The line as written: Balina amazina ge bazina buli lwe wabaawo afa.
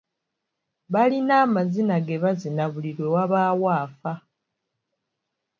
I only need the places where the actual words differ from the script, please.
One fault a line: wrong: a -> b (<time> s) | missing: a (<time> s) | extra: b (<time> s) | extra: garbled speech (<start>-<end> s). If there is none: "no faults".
no faults